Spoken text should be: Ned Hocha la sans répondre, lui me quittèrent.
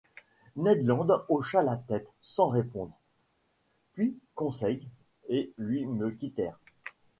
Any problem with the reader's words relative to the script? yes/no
yes